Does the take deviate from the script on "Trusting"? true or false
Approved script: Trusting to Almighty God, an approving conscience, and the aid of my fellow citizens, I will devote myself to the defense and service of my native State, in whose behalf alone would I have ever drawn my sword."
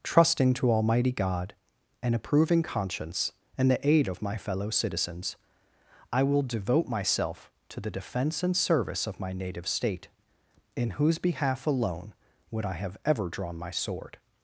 false